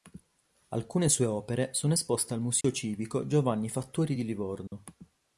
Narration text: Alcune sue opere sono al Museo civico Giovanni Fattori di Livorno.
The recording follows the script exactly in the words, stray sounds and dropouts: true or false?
false